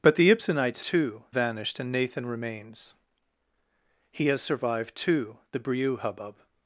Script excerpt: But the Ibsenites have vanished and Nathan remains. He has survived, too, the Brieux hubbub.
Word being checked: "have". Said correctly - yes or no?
no